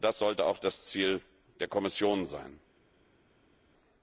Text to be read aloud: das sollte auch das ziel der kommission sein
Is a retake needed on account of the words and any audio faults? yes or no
no